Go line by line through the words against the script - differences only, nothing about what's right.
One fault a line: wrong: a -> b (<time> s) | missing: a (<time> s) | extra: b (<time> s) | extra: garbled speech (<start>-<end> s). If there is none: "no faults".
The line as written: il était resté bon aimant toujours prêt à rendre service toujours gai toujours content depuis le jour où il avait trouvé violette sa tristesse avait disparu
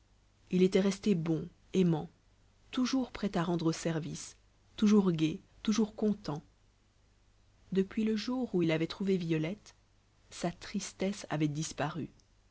no faults